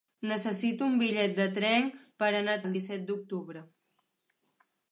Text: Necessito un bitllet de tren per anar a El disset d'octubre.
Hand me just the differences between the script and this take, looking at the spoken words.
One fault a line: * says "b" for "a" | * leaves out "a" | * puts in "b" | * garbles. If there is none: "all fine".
all fine